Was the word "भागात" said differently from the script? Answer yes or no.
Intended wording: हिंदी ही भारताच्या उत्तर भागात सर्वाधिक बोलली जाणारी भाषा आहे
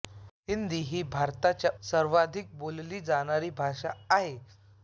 yes